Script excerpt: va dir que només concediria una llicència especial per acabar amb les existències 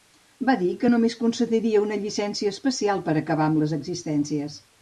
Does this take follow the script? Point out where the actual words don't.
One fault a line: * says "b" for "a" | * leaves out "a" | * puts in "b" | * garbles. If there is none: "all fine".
all fine